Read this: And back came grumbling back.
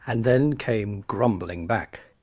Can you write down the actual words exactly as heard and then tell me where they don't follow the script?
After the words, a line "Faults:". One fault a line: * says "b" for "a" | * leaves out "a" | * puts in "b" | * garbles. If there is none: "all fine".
And then came grumbling back.
Faults:
* says "then" for "back"